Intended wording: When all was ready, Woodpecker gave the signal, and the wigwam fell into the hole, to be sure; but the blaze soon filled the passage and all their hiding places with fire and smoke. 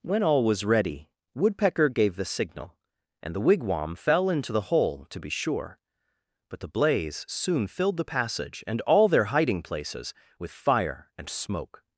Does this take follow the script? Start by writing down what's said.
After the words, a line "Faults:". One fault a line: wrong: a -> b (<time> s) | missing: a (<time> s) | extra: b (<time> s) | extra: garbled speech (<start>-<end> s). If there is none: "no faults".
When all was ready, Woodpecker gave the signal, and the wigwam fell into the hole, to be sure; but the blaze soon filled the passage and all their hiding places with fire and smoke.
Faults:
no faults